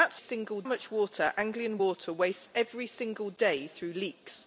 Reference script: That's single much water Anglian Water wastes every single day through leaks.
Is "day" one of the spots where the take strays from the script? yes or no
no